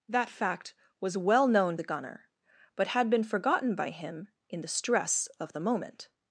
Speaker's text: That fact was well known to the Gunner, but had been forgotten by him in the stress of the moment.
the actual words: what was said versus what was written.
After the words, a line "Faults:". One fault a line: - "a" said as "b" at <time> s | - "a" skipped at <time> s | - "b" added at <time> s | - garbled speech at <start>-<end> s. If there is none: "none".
That fact was well known the Gunner, but had been forgotten by him in the stress of the moment.
Faults:
- "to" skipped at 1.8 s